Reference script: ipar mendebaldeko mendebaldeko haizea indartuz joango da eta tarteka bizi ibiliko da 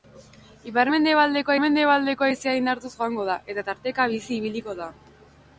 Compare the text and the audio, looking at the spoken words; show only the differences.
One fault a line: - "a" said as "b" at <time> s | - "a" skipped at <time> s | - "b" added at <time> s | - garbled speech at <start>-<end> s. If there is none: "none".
none